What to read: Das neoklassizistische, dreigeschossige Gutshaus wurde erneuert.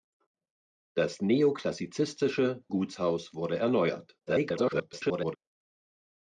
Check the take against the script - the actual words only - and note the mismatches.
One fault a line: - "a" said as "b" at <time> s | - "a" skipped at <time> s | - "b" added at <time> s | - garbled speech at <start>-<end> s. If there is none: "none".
- "dreigeschossige" skipped at 2.6 s
- garbled speech at 4.3-5.4 s